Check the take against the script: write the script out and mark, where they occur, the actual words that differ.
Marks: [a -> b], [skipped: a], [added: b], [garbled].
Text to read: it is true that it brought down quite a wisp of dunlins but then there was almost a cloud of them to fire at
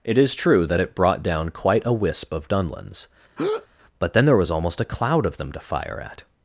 it is true that it brought down quite a wisp of dunlins but then there was almost a cloud of them to fire at